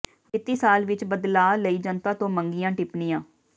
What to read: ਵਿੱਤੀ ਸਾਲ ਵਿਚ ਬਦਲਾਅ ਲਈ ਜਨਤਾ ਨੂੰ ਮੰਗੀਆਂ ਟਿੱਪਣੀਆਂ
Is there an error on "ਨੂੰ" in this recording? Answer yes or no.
yes